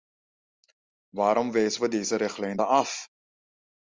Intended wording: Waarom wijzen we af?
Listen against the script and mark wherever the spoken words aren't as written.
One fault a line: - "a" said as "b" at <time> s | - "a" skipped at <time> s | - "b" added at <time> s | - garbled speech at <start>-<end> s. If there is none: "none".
- "deze richtlijn dan" added at 1.9 s